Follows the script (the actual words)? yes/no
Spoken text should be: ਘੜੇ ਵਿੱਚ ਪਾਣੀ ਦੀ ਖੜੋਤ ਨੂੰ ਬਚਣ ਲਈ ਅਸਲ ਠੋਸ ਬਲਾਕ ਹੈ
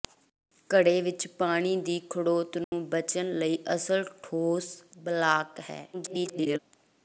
no